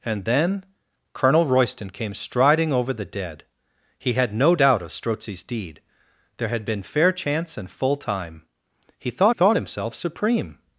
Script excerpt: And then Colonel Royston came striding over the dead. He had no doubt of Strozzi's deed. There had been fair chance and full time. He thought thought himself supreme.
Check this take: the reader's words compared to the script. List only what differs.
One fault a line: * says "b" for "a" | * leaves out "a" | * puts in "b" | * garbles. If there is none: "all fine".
all fine